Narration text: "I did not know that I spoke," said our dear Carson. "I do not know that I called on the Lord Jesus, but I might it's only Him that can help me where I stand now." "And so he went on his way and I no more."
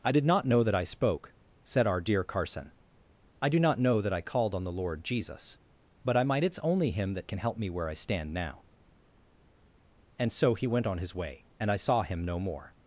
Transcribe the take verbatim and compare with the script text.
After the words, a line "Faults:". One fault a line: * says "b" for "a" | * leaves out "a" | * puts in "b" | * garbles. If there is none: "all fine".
"I did not know that I spoke," said our dear Carson. "I do not know that I called on the Lord Jesus, but I might it's only Him that can help me where I stand now." "And so he went on his way and I saw him no more."
Faults:
* puts in "saw him"